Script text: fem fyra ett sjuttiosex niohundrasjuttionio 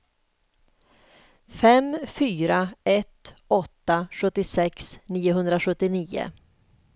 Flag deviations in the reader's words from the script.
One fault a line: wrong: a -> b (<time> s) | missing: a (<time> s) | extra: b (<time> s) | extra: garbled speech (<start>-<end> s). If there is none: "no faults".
extra: åtta (3.5 s)